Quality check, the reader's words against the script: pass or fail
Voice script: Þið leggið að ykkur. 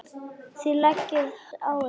pass